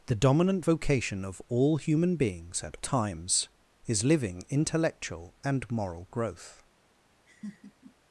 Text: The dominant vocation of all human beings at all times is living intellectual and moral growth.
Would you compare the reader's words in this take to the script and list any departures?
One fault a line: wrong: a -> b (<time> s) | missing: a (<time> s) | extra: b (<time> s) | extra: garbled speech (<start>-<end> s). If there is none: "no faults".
missing: all (2.8 s)